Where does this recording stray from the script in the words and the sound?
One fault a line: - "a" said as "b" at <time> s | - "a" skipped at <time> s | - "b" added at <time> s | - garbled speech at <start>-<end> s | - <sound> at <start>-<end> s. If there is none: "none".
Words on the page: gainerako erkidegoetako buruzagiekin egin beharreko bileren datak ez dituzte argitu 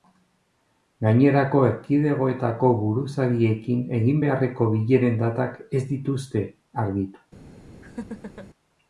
- laugh at 7.8-8.5 s